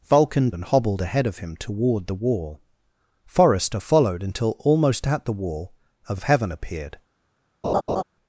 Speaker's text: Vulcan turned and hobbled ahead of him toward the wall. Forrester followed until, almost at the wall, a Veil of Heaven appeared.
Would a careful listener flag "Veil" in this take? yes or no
yes